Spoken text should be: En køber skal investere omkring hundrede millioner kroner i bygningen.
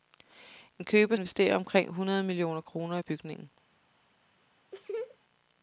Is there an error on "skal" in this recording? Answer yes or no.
yes